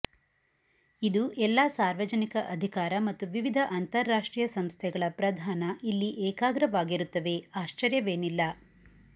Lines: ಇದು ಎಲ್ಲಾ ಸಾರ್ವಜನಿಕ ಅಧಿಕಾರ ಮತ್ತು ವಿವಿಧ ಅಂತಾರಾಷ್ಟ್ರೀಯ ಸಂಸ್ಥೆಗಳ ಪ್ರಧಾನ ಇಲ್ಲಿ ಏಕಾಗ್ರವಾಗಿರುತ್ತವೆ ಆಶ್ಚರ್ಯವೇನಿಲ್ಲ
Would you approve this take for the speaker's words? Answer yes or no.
yes